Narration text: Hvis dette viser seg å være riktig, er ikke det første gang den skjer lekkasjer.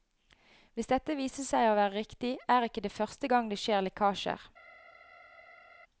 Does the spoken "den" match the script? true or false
false